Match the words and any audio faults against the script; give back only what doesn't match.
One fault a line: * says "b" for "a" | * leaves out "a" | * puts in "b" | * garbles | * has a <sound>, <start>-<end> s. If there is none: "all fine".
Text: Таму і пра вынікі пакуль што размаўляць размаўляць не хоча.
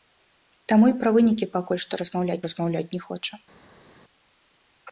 all fine